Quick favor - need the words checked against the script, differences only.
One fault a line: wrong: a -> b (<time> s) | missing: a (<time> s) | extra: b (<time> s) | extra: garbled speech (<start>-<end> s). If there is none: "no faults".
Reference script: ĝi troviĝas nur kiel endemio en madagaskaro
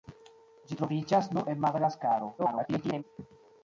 missing: kiel endemio (1.4 s)
extra: garbled speech (2.4-3.0 s)